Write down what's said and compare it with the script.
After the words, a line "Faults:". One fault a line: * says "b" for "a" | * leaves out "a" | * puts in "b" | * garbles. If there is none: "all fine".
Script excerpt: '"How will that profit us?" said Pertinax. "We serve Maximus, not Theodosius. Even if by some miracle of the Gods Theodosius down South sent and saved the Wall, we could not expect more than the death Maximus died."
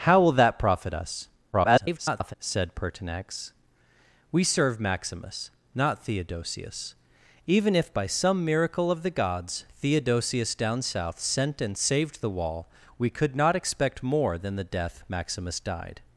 '"How will that profit us?" [garbled] said Pertinax. "We serve Maximus, not Theodosius. Even if by some miracle of the Gods Theodosius down South sent and saved the Wall, we could not expect more than the death Maximus died."
Faults:
* garbles